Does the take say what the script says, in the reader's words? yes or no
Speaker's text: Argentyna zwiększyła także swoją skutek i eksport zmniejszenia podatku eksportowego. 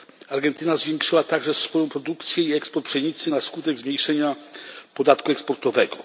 no